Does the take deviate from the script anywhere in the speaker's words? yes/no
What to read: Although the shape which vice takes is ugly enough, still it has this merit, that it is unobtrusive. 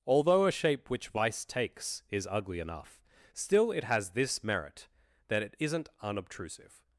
yes